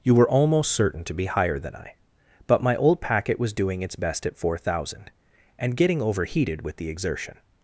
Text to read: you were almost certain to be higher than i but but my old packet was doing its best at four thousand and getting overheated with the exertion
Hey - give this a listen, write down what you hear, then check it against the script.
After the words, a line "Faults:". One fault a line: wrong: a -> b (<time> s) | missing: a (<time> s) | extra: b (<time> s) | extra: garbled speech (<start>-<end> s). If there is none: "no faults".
you were almost certain to be higher than i but my old packet was doing its best at four thousand and getting overheated with the exertion
Faults:
missing: but (2.6 s)